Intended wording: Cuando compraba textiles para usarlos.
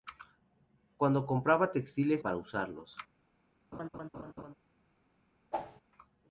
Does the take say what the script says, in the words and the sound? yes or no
no